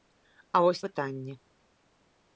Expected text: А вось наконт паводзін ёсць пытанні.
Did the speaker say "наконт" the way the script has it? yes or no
no